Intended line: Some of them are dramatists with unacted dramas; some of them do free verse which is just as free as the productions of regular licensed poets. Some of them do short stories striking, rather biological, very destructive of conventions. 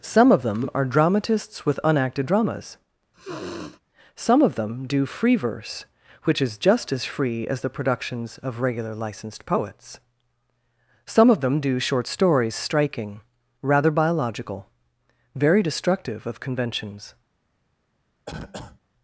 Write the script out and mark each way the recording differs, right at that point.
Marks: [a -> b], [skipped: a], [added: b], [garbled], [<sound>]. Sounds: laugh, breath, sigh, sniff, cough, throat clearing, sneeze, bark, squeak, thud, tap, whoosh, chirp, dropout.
Some of them are dramatists with unacted dramas; [sniff] some of them do free verse which is just as free as the productions of regular licensed poets. Some of them do short stories striking, rather biological, very destructive of conventions. [cough]